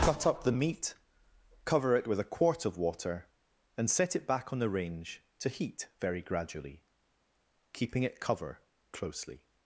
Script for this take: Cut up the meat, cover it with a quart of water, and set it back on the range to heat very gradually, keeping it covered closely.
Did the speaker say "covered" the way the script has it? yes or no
no